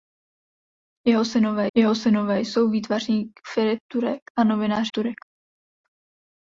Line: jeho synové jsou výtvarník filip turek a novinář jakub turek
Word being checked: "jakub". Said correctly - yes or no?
no